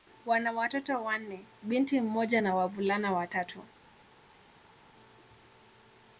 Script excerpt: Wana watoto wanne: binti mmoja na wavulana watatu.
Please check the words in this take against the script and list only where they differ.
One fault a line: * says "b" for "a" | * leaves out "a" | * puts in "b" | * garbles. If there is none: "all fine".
all fine